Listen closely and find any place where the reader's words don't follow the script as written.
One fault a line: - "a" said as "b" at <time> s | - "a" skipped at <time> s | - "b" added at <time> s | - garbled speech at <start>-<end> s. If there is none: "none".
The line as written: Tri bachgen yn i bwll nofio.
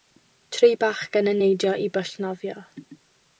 - "neidio" added at 1.4 s